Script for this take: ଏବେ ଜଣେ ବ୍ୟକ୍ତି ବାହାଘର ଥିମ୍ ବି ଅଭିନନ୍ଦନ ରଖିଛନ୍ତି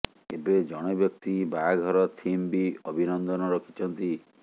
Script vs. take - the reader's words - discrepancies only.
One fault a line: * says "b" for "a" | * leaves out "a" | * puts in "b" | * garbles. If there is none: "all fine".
all fine